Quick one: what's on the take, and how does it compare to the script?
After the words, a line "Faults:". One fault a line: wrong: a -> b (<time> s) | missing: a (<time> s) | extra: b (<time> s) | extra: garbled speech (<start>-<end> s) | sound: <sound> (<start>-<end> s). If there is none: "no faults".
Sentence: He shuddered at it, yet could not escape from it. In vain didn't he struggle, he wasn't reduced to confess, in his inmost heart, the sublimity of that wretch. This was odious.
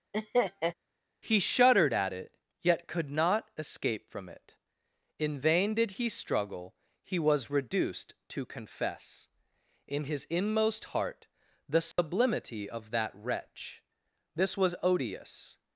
He shuddered at it, yet could not escape from it. In vain did he struggle, he was reduced to confess, in his inmost heart, the sublimity of that wretch. This was odious.
Faults:
sound: laugh (0.1-0.7 s)
wrong: didn't -> did (5.8 s)
wrong: wasn't -> was (7.2 s)
sound: dropout (11.9-12.0 s)